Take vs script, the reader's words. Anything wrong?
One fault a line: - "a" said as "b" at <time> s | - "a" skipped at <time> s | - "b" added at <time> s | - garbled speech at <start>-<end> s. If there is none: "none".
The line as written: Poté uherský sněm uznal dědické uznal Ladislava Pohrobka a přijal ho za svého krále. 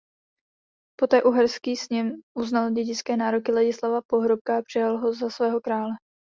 - "uznal" said as "nároky" at 3.2 s